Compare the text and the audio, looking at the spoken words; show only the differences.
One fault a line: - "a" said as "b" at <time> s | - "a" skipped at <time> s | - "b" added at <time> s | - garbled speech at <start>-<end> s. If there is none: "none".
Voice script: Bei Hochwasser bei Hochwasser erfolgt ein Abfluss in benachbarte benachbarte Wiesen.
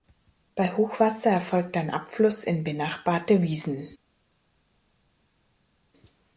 - "bei Hochwasser" skipped at 1.3 s
- "benachbarte" skipped at 3.4 s